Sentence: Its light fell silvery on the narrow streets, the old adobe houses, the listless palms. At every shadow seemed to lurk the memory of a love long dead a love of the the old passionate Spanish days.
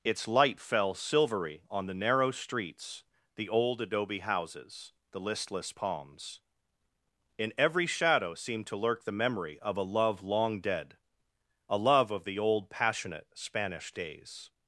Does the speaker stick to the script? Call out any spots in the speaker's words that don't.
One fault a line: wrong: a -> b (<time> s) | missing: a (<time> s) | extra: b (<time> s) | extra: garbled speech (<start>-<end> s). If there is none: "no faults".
wrong: At -> In (7.4 s)
missing: the (12.4 s)